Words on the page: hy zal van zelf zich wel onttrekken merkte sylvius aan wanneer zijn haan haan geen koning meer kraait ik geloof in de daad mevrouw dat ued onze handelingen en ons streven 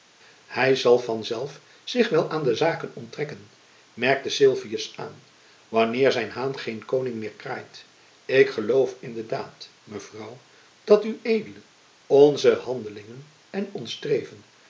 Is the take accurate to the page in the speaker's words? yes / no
no